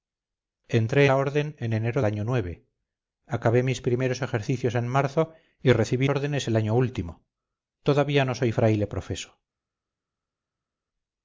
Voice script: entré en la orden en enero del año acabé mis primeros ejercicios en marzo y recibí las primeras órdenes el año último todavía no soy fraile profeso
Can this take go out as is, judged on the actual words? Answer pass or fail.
fail